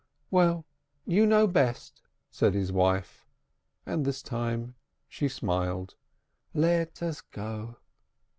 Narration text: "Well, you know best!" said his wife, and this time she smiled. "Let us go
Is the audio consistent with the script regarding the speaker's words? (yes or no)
yes